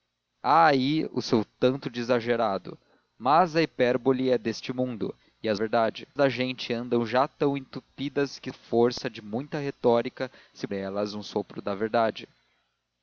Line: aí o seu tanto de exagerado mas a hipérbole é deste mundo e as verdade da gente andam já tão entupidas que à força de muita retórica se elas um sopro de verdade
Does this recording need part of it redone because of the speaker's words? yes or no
no